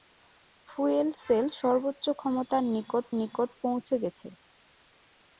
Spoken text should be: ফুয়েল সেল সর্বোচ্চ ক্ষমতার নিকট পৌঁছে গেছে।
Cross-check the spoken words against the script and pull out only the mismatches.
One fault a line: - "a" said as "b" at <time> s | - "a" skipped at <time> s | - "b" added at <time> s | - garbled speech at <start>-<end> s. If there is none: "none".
- "নিকট" added at 3.2 s